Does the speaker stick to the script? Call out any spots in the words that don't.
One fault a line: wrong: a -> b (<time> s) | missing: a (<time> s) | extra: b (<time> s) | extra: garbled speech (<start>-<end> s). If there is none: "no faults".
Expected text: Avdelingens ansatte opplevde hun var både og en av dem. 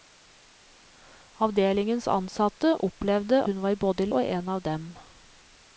no faults